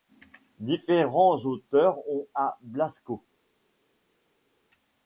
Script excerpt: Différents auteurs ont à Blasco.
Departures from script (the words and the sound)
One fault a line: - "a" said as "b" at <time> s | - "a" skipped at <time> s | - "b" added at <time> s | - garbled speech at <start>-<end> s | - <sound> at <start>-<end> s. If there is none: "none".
none